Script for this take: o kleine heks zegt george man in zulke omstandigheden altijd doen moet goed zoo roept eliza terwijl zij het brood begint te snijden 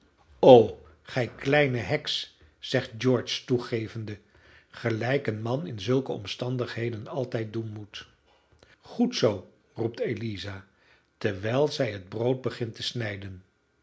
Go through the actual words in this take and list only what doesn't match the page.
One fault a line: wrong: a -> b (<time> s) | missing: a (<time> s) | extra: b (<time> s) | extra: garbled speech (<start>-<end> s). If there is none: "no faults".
extra: gij (1.0 s)
extra: toegevende gelijk een (3.5 s)